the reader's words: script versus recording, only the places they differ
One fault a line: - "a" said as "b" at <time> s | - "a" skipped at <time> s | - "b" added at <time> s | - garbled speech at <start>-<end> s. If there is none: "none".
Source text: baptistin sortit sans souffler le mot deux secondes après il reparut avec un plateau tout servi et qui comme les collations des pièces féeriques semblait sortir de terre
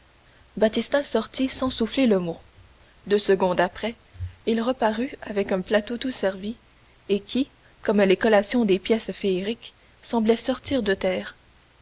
none